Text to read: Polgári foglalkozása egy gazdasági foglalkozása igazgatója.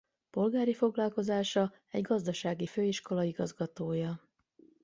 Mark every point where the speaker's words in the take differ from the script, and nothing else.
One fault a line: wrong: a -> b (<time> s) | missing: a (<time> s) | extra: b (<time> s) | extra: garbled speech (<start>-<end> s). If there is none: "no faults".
wrong: foglalkozása -> főiskola (2.6 s)